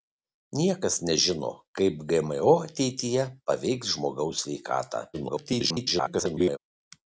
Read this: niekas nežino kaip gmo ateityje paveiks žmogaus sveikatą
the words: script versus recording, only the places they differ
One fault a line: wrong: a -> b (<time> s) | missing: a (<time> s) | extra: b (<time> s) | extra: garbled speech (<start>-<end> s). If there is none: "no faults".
extra: garbled speech (5.1-6.6 s)